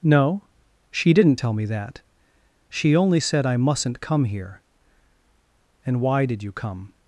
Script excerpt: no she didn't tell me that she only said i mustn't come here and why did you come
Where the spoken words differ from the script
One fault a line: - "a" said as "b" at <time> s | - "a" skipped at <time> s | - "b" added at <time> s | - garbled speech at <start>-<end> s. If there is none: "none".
none